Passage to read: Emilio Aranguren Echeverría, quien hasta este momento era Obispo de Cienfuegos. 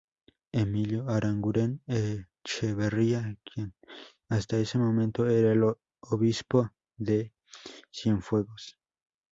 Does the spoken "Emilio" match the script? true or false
true